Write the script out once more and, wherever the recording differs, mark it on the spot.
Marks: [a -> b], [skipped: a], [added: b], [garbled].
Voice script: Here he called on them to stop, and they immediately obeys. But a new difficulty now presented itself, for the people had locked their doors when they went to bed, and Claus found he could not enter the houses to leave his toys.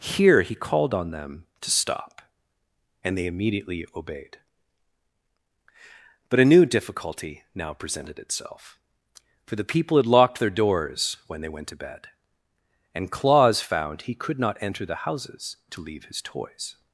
Here he called on them to stop, and they immediately [obeys. -> obeyed] But a new difficulty now presented itself, for the people had locked their doors when they went to bed, and Claus found he could not enter the houses to leave his toys.